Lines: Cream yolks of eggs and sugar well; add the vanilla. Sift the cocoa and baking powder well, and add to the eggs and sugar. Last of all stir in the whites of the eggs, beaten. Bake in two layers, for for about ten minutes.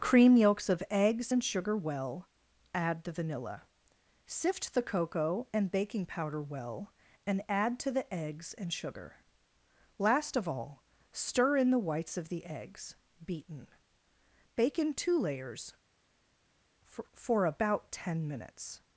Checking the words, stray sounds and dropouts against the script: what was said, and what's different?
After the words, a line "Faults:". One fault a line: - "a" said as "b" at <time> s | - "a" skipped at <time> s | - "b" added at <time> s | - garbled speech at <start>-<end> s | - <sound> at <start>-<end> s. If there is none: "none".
Cream yolks of eggs and sugar well; add the vanilla. Sift the cocoa and baking powder well, and add to the eggs and sugar. Last of all stir in the whites of the eggs, beaten. Bake in two layers, for for about ten minutes.
Faults:
none